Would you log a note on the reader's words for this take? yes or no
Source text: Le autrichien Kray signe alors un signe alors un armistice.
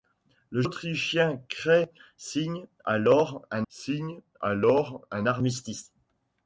no